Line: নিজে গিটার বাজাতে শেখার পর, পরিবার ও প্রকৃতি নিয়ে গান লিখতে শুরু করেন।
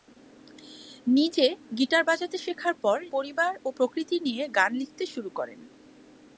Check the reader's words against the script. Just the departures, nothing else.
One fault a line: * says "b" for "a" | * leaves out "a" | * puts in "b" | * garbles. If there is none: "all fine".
all fine